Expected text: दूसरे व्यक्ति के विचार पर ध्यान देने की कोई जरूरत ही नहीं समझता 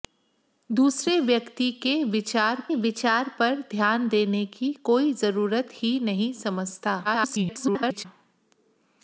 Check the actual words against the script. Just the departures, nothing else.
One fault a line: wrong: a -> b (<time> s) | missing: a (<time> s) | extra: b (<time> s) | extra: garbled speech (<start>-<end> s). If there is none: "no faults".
extra: विचार (2.7 s)
extra: garbled speech (7.0-8.1 s)